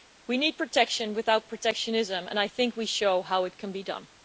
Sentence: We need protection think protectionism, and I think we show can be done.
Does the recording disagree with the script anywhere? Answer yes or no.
yes